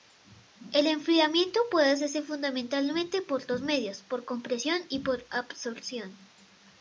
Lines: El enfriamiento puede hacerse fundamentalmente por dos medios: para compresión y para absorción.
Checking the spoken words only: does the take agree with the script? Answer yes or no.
no